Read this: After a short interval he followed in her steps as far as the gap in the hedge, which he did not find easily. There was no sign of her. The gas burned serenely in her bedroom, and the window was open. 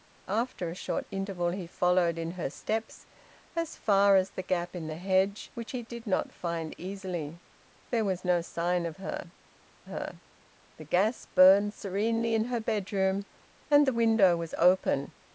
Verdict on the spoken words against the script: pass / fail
fail